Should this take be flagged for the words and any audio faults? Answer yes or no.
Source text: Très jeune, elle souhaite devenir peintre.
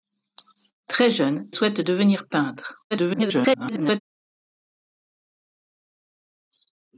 yes